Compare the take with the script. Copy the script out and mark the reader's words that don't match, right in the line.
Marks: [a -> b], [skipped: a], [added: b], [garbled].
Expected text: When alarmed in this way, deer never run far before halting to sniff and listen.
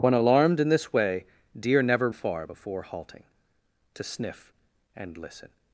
When alarmed in this way, deer never [skipped: run] far before halting to sniff and listen.